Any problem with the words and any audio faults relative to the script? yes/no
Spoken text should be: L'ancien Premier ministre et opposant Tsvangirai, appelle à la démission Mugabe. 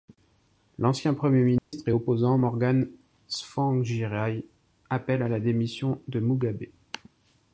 yes